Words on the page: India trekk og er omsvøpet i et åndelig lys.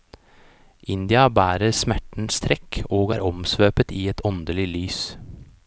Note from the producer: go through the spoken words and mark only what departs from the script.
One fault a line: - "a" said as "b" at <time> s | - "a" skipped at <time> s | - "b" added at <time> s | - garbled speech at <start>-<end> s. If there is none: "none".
- "bærer smertens" added at 1.4 s